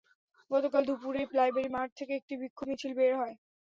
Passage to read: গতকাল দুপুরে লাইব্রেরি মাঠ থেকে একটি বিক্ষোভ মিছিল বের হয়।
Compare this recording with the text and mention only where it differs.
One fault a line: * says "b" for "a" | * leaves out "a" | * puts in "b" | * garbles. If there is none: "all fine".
all fine